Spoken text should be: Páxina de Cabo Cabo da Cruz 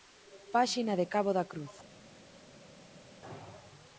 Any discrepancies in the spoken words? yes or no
yes